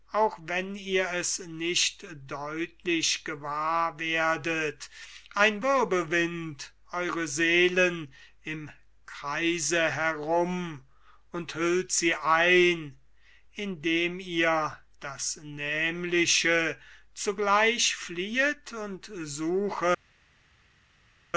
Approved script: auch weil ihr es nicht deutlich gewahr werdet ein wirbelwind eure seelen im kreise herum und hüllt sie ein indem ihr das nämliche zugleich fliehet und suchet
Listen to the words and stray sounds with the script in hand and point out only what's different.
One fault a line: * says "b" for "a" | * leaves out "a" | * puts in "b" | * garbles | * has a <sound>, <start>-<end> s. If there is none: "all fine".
* says "wenn" for "weil"